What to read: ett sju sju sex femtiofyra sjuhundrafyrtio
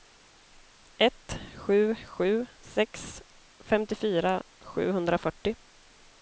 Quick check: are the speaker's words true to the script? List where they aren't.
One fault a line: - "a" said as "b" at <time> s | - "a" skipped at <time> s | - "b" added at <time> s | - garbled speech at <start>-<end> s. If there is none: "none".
none